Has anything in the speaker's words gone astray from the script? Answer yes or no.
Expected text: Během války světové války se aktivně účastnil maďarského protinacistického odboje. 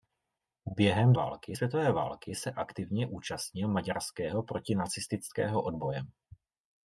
no